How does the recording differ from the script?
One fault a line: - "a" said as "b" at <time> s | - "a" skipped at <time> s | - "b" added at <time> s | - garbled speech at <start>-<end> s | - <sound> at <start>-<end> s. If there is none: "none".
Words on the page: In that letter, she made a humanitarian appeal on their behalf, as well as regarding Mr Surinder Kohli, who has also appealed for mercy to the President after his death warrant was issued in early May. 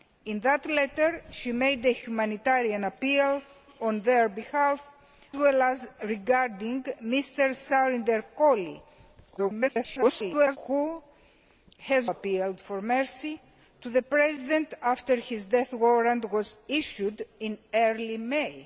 - "as" skipped at 4.9 s
- garbled speech at 9.4-10.6 s
- "also" skipped at 12.1 s